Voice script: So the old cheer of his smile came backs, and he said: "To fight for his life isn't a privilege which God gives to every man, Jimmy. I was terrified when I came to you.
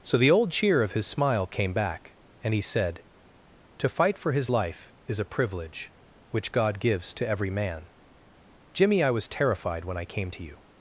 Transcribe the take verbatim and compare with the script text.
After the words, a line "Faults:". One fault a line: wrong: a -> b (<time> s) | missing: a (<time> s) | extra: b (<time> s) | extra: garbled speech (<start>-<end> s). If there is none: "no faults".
So the old cheer of his smile came back, and he said: "To fight for his life is a privilege which God gives to every man, Jimmy. I was terrified when I came to you.
Faults:
wrong: backs -> back (1.7 s)
wrong: isn't -> is (5.1 s)